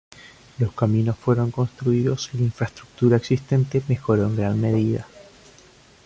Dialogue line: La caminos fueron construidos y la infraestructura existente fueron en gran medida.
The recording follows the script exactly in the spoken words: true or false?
false